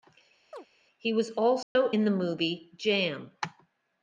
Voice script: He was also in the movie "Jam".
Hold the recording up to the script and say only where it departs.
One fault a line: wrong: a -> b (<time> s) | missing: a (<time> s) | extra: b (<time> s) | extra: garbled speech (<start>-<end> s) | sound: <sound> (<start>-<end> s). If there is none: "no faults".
sound: chirp (0.5-0.7 s)
sound: dropout (1.6-1.8 s)